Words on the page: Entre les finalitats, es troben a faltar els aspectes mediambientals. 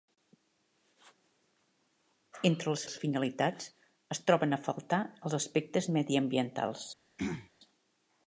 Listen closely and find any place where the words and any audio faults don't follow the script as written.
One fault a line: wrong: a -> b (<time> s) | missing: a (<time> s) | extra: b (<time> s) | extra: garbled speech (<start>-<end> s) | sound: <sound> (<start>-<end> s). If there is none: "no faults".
extra: les (2.8 s)
sound: throat clearing (7.2-7.5 s)